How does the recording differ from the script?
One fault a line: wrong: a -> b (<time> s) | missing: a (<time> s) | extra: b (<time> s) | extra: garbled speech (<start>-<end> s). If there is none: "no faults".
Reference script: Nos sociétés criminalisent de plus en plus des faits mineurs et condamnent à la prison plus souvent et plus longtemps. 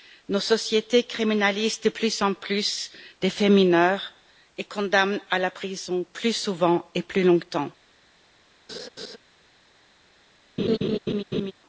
no faults